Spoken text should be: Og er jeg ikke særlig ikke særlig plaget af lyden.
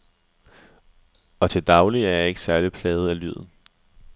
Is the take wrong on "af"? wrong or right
right